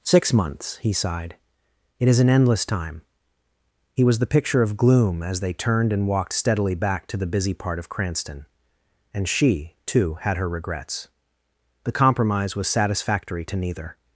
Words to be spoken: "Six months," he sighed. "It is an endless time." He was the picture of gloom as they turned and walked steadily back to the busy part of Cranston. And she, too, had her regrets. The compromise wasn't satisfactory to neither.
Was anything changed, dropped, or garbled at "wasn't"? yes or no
yes